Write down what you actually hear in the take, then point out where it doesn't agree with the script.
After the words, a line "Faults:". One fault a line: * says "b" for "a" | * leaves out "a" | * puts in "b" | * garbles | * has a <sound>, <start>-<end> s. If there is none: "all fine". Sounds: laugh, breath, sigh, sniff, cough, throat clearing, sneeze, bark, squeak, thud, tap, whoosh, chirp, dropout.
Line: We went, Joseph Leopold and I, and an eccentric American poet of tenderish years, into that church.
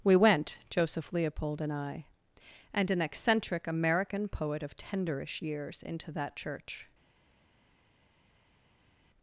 We went, Joseph Leopold and I, and an eccentric American poet of tenderish years, into that church.
Faults:
all fine